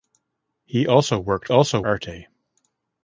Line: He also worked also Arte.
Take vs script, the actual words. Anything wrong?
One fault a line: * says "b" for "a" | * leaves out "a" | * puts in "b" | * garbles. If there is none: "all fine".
all fine